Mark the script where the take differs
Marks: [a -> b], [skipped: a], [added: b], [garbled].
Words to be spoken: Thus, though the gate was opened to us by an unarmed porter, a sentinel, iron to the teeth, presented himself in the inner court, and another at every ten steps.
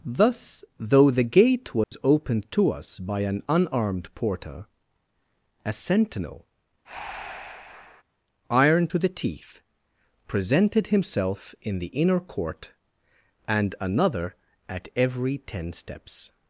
Thus, though the gate was opened to us by an unarmed porter, a sentinel, iron to the teeth, presented himself in the inner court, and another at every ten steps.